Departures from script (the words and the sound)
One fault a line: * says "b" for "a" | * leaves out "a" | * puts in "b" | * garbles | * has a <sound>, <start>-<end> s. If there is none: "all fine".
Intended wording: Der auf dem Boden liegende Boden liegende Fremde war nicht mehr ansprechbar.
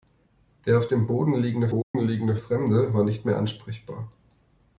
* has a dropout, 1.8-1.9 s